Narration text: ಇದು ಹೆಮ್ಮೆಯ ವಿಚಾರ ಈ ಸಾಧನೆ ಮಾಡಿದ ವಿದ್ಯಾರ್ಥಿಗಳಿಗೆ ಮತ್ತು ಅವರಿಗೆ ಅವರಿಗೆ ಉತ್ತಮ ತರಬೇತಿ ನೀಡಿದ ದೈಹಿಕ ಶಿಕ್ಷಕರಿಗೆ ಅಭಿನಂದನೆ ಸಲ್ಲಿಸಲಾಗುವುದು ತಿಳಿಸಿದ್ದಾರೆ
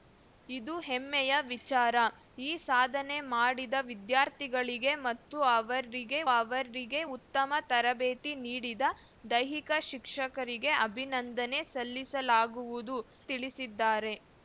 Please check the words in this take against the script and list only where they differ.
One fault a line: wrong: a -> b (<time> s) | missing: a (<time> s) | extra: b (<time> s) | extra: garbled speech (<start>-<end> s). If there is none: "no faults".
no faults